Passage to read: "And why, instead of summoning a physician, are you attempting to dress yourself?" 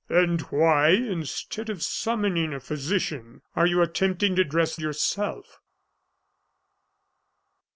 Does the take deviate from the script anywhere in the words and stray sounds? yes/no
no